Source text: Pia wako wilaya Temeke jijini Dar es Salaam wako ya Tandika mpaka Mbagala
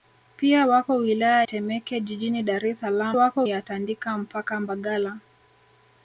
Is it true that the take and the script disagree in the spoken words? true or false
false